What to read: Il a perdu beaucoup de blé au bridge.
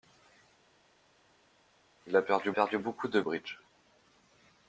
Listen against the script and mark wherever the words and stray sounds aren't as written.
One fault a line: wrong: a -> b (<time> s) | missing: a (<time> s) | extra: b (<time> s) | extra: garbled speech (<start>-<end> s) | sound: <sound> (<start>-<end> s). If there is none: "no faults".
extra: perdu (2.5 s)
missing: blé au (3.2 s)